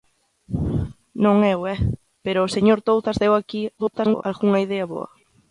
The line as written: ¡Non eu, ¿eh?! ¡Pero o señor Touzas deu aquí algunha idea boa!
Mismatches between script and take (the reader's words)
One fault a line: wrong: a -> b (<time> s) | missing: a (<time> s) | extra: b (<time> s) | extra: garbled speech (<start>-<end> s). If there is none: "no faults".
extra: garbled speech (3.8-4.2 s)